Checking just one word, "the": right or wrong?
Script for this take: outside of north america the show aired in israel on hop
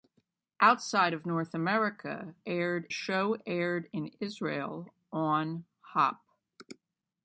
wrong